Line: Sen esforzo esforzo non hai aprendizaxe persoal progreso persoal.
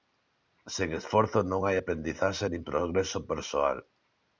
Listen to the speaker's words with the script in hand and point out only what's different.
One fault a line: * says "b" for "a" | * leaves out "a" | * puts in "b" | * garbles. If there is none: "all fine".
* leaves out "esforzo"
* says "nin" for "persoal"